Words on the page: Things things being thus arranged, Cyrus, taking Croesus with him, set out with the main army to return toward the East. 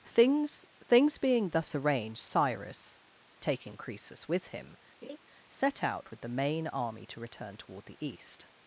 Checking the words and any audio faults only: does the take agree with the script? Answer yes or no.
no